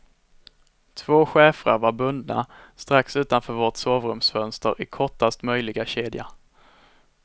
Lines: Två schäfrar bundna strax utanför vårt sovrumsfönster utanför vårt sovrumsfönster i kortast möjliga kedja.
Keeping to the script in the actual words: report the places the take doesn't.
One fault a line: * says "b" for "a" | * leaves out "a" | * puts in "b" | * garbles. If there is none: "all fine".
* puts in "var"
* leaves out "utanför vårt sovrumsfönster"